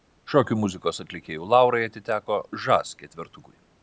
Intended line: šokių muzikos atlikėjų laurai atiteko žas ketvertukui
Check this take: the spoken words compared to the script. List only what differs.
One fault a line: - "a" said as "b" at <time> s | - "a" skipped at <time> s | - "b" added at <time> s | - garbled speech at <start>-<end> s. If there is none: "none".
none